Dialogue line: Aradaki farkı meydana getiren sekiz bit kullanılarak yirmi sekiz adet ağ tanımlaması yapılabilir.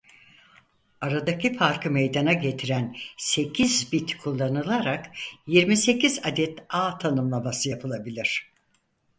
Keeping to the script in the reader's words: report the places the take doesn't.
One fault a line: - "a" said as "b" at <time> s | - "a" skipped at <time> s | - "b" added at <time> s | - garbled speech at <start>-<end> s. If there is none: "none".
none